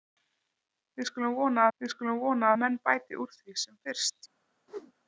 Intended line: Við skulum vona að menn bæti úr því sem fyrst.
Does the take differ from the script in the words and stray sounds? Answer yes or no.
yes